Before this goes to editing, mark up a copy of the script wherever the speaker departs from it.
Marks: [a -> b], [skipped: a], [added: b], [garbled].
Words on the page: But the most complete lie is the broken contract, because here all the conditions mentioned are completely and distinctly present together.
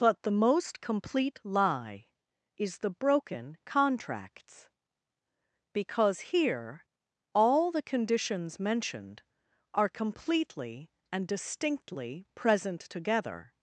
But the most complete lie is the broken [contract, -> contracts] because here all the conditions mentioned are completely and distinctly present together.